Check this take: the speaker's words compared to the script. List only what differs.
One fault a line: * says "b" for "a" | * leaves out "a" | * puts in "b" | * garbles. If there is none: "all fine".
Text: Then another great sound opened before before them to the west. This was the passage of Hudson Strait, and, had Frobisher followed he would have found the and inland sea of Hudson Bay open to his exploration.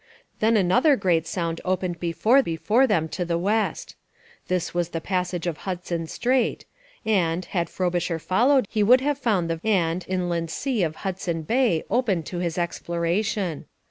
all fine